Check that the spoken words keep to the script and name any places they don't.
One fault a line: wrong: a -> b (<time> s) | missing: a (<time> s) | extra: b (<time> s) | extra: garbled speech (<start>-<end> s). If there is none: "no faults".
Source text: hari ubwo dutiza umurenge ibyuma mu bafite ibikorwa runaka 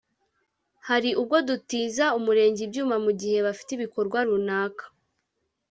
extra: gihe (3.2 s)